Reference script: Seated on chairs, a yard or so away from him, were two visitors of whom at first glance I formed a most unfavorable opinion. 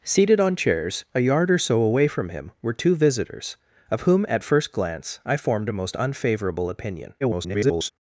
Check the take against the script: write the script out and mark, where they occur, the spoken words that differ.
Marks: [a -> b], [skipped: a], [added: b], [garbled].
Seated on chairs, a yard or so away from him, were two visitors of whom at first glance I formed a most unfavorable opinion. [garbled]